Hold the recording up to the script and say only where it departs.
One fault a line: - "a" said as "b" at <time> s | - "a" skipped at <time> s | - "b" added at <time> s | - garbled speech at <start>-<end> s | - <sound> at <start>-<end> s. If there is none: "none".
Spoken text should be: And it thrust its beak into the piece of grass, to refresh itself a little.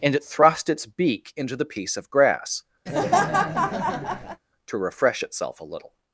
- laugh at 2.9-4.4 s